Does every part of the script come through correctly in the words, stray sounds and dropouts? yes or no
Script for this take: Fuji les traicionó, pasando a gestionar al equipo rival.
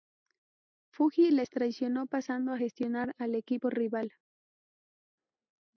yes